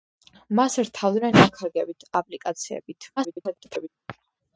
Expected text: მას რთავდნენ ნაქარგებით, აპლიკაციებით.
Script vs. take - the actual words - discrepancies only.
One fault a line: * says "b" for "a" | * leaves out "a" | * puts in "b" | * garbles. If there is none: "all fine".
* garbles